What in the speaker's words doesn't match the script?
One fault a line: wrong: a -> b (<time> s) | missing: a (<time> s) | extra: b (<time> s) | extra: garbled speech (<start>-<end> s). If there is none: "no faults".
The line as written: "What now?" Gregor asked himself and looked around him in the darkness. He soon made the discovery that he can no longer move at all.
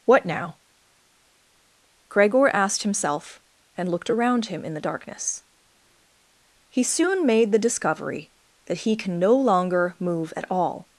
no faults